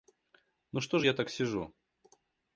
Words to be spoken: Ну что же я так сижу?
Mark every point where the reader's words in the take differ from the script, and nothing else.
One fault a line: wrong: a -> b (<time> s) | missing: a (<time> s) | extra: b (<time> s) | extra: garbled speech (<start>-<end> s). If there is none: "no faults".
no faults